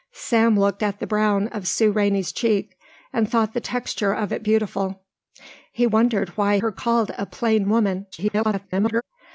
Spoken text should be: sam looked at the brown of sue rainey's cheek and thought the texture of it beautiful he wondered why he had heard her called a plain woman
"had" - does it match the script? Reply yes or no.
no